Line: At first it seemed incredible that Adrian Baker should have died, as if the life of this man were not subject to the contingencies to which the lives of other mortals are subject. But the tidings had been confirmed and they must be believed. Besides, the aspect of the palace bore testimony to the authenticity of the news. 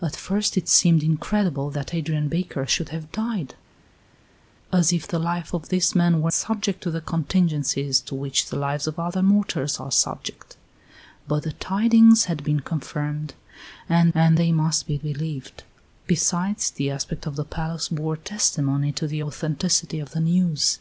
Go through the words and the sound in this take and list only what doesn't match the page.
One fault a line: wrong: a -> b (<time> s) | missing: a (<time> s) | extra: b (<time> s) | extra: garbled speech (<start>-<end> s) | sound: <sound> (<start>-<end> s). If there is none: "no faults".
missing: not (6.3 s)
extra: and (14.2 s)